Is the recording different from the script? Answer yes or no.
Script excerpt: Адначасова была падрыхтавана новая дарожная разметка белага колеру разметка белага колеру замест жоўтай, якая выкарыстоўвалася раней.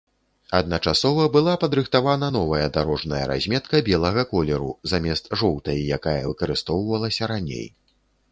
yes